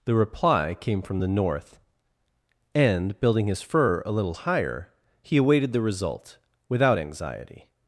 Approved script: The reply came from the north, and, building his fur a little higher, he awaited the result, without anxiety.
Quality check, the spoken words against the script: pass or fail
pass